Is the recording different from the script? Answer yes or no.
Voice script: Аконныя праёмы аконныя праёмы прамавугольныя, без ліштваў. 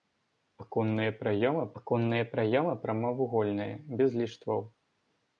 no